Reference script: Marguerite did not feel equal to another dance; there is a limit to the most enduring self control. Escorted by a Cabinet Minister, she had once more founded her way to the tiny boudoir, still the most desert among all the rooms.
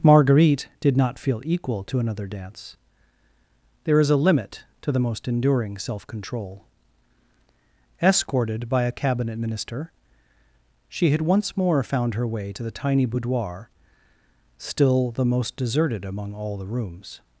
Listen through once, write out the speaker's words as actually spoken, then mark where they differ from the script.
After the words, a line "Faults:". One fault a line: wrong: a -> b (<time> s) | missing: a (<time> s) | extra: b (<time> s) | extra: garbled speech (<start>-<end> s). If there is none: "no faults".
Marguerite did not feel equal to another dance; there is a limit to the most enduring self control. Escorted by a Cabinet Minister, she had once more found her way to the tiny boudoir, still the most deserted among all the rooms.
Faults:
wrong: founded -> found (11.8 s)
wrong: desert -> deserted (15.6 s)